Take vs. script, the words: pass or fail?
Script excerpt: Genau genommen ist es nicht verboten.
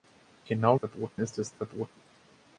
fail